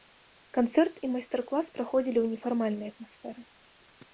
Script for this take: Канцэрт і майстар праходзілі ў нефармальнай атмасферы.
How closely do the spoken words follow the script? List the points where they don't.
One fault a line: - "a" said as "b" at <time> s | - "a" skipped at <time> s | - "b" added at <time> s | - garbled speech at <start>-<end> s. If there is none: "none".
- "клас" added at 1.5 s